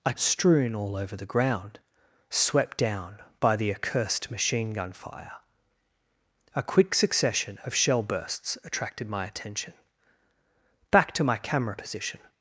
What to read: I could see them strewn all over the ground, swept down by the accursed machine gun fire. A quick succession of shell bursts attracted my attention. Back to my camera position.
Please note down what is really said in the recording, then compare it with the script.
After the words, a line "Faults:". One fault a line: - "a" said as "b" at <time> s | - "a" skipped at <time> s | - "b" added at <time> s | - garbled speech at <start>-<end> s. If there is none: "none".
I strewn all over the ground, swept down by the accursed machine gun fire. A quick succession of shell bursts attracted my attention. Back to my camera position.
Faults:
- "could see them" skipped at 0.1 s